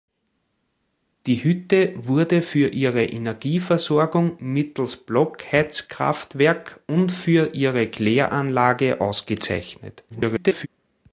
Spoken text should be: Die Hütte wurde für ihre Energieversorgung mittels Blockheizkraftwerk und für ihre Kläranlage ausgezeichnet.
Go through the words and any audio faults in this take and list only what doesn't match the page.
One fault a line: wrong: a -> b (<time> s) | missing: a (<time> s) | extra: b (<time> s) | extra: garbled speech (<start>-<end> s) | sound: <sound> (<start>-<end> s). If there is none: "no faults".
extra: garbled speech (10.1-10.7 s)